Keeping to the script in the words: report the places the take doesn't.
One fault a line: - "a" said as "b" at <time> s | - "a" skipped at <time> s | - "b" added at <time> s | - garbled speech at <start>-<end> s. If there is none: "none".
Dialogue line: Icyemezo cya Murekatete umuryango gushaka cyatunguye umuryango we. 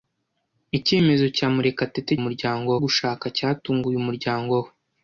none